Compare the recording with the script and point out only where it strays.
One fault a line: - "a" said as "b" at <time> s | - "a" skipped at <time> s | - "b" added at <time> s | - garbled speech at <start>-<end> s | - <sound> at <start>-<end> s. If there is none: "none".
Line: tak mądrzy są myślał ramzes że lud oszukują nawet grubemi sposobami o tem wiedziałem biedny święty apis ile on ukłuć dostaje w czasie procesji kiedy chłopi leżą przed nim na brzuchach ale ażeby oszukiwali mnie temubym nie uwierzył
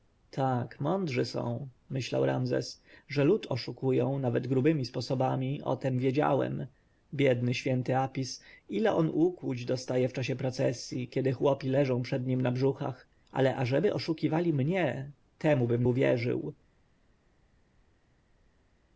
- "nie" skipped at 15.8 s